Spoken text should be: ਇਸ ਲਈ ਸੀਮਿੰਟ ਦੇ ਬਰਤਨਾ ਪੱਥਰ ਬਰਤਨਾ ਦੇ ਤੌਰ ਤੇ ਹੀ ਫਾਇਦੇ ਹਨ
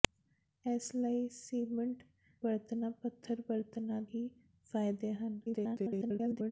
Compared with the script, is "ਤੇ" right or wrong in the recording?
wrong